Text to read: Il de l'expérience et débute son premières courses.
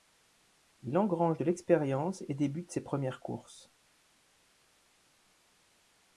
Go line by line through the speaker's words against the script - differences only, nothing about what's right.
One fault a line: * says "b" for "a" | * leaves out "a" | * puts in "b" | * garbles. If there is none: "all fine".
* puts in "engrange"
* says "ses" for "son"